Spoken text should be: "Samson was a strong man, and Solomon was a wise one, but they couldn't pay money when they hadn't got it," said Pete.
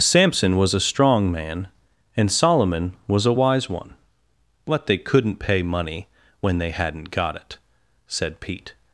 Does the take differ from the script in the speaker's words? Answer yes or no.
no